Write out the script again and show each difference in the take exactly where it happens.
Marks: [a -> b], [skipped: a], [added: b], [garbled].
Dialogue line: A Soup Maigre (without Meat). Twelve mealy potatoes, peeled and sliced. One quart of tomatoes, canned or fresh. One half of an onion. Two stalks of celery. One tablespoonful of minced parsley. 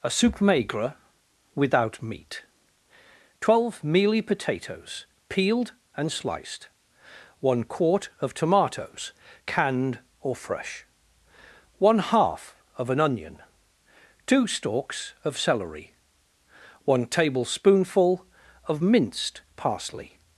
A Soup Maigre (without Meat). Twelve mealy potatoes, peeled and sliced. One quart of tomatoes, canned or fresh. One half of an onion. Two stalks of celery. One tablespoonful of minced parsley.